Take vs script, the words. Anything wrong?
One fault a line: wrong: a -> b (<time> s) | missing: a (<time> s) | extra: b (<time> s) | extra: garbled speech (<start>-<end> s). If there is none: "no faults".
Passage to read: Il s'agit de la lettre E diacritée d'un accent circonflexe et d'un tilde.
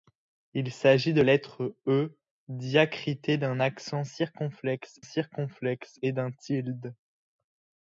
missing: la (1.2 s)
extra: circonflexe (5.0 s)